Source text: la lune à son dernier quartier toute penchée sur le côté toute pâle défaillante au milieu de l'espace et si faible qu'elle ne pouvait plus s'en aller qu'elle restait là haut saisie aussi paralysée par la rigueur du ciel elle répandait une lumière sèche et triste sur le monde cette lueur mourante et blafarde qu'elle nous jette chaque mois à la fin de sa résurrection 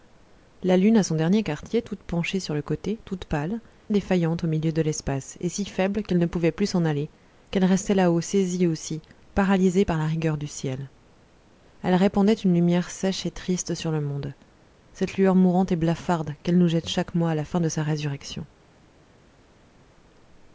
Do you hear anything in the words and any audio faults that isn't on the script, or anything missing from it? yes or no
no